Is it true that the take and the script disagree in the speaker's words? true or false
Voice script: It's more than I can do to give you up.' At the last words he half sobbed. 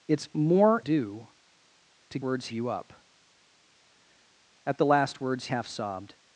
true